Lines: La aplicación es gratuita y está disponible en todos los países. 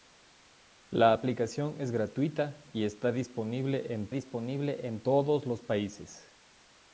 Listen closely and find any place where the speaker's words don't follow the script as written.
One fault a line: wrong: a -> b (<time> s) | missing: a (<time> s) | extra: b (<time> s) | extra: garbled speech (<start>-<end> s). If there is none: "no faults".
extra: disponible en (4.1 s)